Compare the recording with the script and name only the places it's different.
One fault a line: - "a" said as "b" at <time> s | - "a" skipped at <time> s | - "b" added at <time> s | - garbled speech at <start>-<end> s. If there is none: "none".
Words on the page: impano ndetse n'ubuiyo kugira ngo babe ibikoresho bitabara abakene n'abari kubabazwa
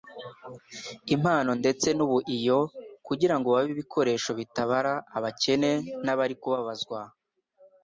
none